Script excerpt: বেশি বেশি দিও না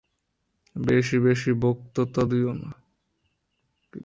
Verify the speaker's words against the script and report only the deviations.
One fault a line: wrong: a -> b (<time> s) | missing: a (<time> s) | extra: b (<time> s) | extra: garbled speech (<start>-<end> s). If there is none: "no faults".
extra: বক্তৃতা (1.6 s)